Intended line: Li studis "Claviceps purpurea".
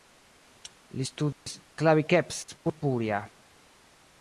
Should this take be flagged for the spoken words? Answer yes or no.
no